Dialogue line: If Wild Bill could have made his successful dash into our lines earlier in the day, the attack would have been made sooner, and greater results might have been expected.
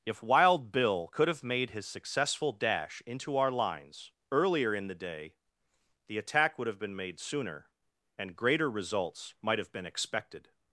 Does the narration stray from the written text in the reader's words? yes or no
no